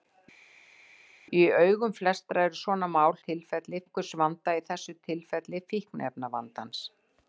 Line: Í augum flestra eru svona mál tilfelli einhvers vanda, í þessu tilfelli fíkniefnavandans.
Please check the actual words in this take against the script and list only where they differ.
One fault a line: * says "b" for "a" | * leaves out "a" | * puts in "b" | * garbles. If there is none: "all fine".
all fine